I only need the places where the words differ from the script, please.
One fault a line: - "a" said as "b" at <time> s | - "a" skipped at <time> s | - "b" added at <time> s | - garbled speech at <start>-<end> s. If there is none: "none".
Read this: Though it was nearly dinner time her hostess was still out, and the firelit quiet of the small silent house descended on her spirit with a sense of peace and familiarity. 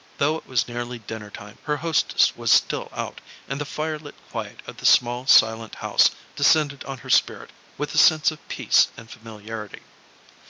none